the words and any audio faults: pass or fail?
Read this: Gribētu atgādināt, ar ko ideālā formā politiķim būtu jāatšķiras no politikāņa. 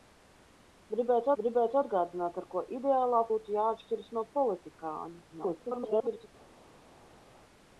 fail